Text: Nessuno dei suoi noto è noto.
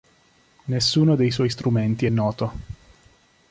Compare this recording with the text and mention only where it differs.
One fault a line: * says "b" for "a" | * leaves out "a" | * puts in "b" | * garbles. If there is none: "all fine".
* says "strumenti" for "noto"